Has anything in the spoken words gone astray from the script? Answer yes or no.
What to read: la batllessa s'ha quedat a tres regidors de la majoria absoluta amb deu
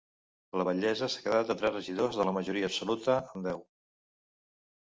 no